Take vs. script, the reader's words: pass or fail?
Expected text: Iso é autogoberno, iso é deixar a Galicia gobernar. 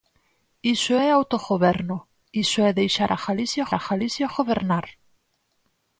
fail